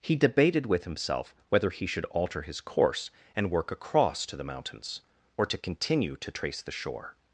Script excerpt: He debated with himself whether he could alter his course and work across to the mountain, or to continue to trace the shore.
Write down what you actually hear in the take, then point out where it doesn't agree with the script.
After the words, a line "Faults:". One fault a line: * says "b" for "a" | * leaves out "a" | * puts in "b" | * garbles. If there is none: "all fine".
He debated with himself whether he should alter his course and work across to the mountains, or to continue to trace the shore.
Faults:
* says "should" for "could"
* says "mountains" for "mountain"